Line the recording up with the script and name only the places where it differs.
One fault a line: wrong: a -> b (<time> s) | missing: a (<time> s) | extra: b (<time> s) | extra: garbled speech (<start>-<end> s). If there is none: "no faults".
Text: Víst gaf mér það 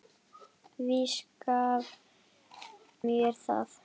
no faults